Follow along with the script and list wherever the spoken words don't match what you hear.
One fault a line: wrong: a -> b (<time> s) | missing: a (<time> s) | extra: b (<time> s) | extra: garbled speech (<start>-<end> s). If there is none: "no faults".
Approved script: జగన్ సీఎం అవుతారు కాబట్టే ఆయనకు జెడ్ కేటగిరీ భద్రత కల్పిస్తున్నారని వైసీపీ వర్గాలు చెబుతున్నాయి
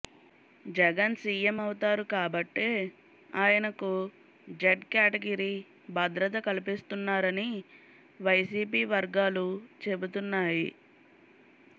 no faults